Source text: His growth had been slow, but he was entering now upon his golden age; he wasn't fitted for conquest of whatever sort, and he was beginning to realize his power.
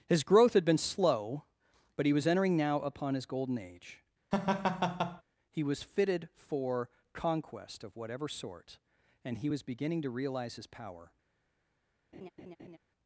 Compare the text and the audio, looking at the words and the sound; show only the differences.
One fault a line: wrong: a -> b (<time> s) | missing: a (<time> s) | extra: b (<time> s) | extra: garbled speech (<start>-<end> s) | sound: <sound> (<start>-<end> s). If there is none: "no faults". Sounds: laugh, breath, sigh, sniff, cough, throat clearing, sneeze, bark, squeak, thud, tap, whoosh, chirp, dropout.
sound: laugh (4.3-5.2 s)
wrong: wasn't -> was (5.6 s)
sound: laugh (12.1-12.8 s)